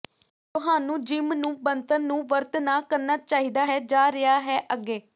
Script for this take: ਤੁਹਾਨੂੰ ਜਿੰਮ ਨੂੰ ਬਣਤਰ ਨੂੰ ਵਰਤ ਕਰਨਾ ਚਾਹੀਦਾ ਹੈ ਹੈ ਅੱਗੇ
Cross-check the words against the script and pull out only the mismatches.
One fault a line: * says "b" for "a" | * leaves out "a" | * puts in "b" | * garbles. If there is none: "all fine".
* puts in "ਨਾ"
* puts in "ਜਾ ਰਿਹਾ"